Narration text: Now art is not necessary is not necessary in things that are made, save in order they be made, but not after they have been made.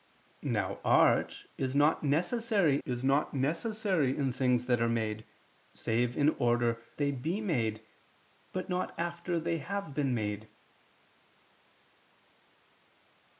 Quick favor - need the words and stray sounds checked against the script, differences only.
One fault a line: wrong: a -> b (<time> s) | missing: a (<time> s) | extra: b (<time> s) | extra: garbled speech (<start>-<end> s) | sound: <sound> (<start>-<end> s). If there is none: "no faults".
no faults